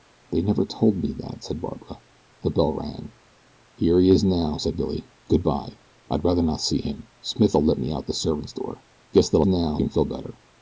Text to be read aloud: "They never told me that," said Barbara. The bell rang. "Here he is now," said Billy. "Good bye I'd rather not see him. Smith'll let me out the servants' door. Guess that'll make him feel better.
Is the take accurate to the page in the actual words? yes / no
no